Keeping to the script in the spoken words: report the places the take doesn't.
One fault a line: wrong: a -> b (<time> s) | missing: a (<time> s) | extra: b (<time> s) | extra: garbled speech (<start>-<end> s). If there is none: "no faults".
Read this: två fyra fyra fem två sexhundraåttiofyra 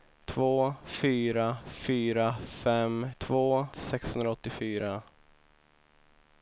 no faults